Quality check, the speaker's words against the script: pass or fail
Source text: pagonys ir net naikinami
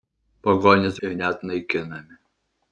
pass